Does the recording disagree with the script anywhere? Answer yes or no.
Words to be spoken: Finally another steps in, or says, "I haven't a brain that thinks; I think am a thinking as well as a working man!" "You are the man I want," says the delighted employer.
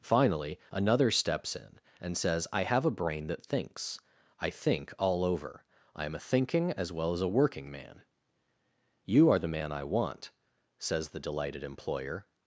yes